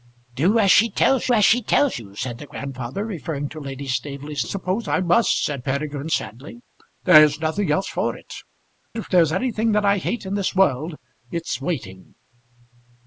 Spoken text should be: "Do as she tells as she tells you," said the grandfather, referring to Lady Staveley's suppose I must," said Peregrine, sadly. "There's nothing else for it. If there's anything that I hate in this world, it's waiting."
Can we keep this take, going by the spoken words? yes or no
yes